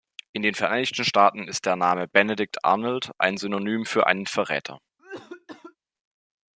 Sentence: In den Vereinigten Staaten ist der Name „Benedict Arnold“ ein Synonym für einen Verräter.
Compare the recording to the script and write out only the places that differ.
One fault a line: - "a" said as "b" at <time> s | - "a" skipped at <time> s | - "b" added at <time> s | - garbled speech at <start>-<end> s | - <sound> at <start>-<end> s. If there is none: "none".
- cough at 5.0-5.8 s